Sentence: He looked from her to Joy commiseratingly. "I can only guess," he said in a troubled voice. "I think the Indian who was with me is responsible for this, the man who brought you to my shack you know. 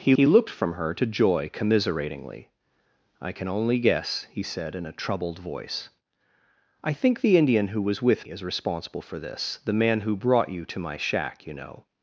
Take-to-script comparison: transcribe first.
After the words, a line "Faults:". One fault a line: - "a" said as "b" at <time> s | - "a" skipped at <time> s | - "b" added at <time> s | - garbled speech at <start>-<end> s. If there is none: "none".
He he looked from her to Joy commiseratingly. "I can only guess," he said in a troubled voice. "I think the Indian who was with is responsible for this, the man who brought you to my shack you know.
Faults:
- "he" added at 0.1 s
- "me" skipped at 8.3 s